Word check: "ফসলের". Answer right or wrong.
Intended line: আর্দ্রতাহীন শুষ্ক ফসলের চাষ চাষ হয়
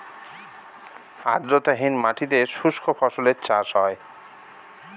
right